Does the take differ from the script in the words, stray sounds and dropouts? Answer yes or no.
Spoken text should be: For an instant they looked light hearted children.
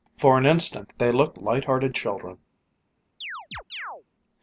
yes